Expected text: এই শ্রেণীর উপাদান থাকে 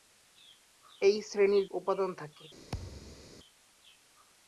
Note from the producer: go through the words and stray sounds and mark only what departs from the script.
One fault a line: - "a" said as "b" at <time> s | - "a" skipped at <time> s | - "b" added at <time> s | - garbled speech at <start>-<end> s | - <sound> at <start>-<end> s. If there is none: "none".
- thud at 2.7-3.3 s